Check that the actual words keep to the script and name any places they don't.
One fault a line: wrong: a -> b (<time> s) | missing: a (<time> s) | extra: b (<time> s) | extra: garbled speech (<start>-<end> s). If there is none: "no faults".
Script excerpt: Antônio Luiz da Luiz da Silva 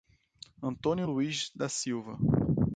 missing: Luiz da (1.7 s)